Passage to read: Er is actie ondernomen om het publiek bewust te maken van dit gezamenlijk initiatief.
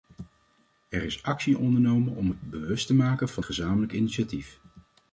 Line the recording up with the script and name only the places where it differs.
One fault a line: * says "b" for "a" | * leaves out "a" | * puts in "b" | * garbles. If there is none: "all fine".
* leaves out "publiek"
* leaves out "dit"